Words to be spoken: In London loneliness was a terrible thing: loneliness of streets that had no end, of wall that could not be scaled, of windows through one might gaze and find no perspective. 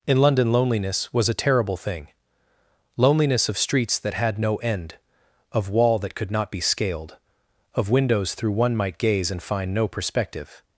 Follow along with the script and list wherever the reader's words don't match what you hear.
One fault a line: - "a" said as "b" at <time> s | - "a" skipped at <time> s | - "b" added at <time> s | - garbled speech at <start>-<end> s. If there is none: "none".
none